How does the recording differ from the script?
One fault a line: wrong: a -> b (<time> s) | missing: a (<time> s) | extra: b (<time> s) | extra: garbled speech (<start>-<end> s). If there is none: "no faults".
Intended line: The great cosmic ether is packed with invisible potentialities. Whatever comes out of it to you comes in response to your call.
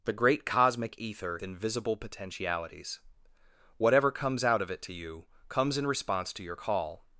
missing: is packed with (1.4 s)